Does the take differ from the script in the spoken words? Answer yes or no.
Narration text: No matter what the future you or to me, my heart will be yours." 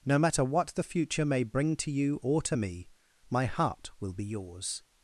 yes